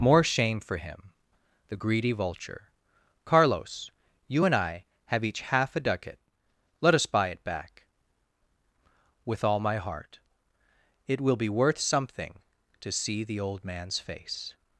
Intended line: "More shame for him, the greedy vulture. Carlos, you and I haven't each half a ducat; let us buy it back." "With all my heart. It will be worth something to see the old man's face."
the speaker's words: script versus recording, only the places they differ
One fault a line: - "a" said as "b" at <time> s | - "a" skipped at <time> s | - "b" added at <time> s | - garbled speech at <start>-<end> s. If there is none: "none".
- "haven't" said as "have" at 5.1 s